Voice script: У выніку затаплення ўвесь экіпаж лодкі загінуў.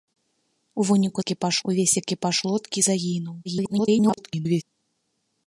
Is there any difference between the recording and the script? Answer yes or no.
yes